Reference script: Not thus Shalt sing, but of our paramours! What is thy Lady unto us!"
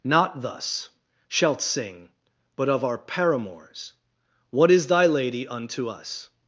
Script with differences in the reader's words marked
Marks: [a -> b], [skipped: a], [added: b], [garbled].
Not thus Shalt sing, but of our paramours! What is thy Lady unto us!"